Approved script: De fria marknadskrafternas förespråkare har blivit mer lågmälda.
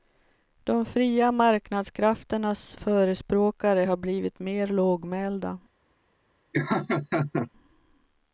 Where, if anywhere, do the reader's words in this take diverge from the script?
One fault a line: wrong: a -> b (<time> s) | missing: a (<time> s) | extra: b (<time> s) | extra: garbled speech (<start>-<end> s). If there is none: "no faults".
no faults